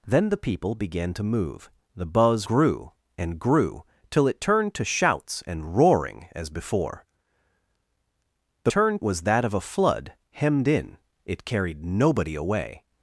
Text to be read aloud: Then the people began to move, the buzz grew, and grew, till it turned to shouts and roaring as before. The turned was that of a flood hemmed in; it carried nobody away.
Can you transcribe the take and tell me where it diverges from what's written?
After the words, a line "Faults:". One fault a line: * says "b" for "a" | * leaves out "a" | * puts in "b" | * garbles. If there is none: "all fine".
Then the people began to move, the buzz grew, and grew, till it turned to shouts and roaring as before. The turned was that of a flood hemmed in; it carried nobody away.
Faults:
all fine